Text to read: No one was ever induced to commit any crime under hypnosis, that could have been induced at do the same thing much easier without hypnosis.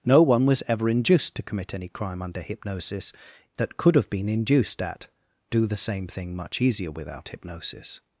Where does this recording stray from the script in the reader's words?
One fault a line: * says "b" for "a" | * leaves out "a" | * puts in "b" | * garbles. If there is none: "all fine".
all fine